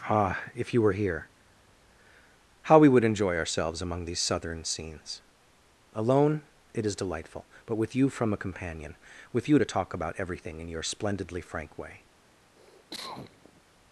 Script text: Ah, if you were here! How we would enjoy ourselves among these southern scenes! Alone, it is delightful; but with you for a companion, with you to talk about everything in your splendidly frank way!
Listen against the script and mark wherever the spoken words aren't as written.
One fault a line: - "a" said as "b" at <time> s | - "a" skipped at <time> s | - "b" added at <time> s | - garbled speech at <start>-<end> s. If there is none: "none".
- "for" said as "from" at 8.1 s